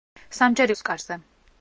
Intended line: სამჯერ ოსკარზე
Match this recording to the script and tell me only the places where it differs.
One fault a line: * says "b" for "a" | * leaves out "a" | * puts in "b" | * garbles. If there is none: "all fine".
all fine